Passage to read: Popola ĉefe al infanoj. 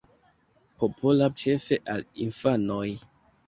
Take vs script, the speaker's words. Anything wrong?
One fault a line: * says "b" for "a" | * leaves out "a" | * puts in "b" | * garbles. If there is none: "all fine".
all fine